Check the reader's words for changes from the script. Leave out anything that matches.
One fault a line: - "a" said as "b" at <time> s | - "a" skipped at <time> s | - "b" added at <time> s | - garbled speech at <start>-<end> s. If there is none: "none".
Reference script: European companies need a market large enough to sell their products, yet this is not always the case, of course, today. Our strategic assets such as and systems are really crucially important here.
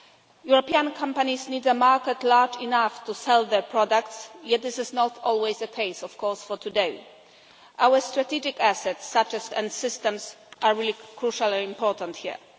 none